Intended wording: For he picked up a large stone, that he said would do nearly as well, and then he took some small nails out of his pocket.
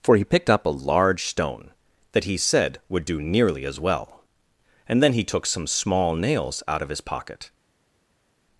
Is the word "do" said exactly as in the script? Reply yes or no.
yes